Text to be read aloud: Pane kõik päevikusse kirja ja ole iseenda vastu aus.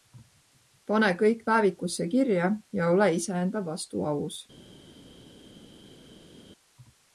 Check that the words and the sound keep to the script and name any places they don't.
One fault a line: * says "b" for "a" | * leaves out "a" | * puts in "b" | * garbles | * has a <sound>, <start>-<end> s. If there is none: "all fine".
all fine